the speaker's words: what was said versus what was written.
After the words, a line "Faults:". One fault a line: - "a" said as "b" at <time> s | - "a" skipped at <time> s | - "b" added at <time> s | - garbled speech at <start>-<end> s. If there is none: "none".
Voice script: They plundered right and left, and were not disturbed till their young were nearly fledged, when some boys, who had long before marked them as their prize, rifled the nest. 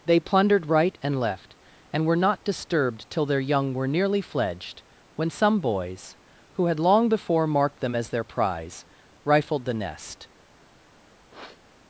They plundered right and left, and were not disturbed till their young were nearly fledged, when some boys, who had long before marked them as their prize, rifled the nest.
Faults:
none